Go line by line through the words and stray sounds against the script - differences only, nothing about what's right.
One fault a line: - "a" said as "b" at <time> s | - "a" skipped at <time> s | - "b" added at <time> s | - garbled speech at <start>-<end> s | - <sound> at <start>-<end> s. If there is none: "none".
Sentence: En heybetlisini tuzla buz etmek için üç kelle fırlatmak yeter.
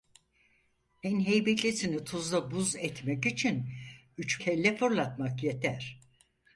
none